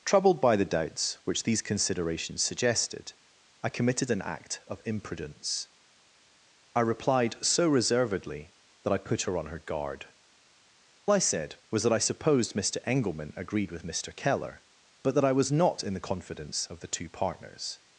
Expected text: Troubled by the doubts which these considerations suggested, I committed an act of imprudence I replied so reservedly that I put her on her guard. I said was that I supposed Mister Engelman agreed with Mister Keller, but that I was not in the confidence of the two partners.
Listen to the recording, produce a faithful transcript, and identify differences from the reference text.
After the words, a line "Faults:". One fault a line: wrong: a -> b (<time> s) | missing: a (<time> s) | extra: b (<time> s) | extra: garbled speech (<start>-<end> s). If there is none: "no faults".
Troubled by the doubts which these considerations suggested, I committed an act of imprudence I replied so reservedly that I put her on her guard. I said was that I supposed Mister Engelman agreed with Mister Keller, but that I was not in the confidence of the two partners.
Faults:
no faults